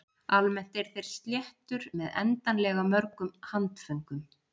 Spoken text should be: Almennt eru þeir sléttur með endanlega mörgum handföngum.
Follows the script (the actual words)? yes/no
yes